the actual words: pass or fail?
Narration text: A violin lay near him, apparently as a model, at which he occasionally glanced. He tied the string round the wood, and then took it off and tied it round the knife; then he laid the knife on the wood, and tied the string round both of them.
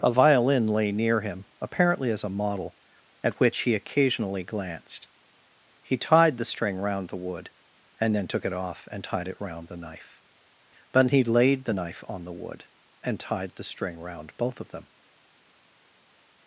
fail